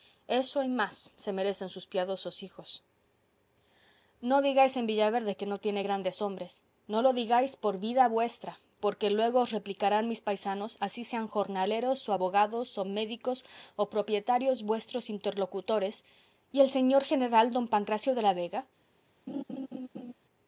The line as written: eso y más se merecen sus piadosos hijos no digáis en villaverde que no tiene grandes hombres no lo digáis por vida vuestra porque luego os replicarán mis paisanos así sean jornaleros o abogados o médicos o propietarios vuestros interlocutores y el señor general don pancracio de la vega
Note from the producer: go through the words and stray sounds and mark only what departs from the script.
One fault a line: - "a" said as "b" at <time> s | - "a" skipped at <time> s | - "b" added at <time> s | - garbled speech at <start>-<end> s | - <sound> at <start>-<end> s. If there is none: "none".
- laugh at 19.3-20.1 s